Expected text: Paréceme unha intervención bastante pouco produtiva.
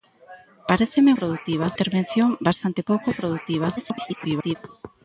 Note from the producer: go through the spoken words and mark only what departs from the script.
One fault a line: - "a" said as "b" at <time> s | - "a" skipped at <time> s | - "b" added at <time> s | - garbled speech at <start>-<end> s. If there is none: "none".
- "unha" said as "produtiva" at 1.2 s
- garbled speech at 3.8-4.6 s